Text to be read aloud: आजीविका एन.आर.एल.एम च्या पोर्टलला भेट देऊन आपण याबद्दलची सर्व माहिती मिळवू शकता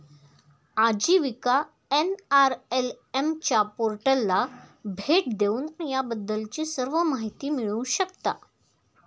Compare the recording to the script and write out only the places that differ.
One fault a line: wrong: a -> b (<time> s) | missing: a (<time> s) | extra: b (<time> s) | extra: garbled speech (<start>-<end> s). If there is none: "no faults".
missing: आपण (5.7 s)